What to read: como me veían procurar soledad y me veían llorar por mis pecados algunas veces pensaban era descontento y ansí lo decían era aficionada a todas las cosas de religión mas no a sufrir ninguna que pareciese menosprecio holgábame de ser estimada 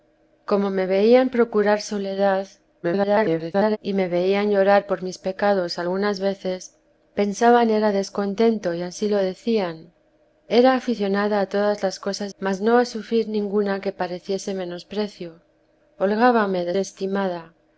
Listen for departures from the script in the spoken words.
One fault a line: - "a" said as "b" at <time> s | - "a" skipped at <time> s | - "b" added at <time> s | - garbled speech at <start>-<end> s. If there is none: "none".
- garbled speech at 2.8-3.8 s
- "de religión" skipped at 12.3 s
- "ser" skipped at 16.8 s